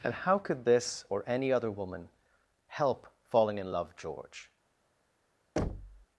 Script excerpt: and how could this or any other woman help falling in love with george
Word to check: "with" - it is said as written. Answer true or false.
false